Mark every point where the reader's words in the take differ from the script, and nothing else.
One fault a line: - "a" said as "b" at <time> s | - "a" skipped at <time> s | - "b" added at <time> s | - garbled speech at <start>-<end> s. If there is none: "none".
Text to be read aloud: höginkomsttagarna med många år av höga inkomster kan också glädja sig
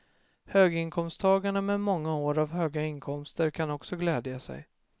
none